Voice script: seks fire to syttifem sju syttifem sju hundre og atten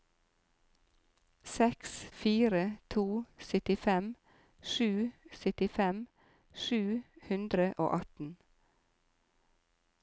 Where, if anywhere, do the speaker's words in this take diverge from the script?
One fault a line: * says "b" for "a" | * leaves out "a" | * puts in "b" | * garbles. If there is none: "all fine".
all fine